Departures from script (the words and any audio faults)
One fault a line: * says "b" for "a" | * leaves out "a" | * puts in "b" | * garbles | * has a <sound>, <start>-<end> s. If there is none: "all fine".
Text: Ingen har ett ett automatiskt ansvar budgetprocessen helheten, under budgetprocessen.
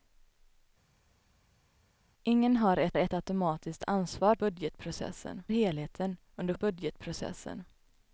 all fine